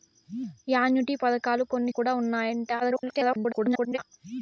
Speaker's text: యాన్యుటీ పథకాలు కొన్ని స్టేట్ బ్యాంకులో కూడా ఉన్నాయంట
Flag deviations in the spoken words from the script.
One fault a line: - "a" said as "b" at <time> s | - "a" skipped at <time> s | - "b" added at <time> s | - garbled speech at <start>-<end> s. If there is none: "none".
- "స్టేట్ బ్యాంకులో" skipped at 1.9 s
- garbled speech at 2.8-4.0 s